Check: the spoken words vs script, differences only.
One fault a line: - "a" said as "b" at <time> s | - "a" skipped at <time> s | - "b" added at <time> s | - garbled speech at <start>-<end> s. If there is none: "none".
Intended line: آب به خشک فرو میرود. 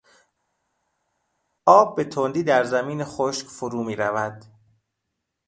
- "تندی در زمین" added at 2.0 s